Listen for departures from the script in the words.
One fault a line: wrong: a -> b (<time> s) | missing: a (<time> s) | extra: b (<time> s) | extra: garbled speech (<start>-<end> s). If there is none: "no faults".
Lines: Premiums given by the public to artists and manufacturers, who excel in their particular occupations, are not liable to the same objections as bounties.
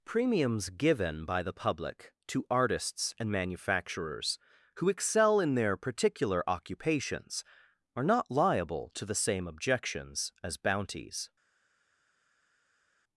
no faults